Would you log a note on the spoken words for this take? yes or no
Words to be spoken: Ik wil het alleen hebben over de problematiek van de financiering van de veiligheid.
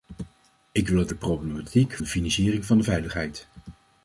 yes